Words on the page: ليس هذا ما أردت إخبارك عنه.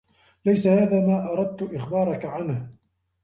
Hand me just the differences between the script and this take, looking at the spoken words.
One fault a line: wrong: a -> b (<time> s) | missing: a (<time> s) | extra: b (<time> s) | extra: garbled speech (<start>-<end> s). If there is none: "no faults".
no faults